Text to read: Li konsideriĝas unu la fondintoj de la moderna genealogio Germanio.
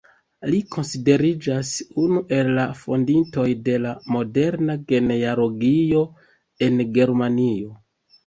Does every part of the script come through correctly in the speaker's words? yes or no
no